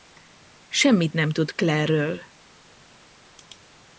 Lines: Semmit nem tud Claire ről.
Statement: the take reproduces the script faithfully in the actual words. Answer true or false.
true